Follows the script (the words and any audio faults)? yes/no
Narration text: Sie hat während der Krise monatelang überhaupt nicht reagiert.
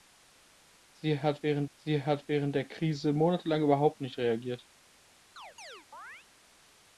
no